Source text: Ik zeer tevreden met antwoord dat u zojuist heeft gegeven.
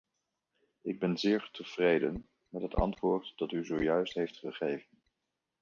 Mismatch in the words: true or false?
true